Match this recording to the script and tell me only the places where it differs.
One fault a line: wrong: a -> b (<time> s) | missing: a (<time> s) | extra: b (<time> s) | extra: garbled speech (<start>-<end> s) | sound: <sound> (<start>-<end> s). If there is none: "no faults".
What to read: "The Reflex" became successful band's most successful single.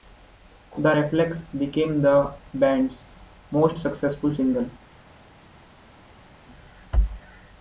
wrong: successful -> the (2.0 s)